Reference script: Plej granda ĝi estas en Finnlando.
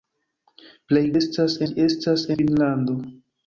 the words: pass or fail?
fail